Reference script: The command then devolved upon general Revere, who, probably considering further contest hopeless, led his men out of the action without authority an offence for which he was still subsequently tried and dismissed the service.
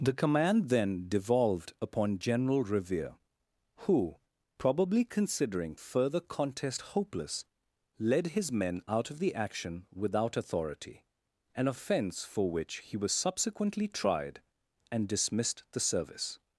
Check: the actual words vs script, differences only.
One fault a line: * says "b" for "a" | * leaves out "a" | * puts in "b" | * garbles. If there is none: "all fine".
* leaves out "still"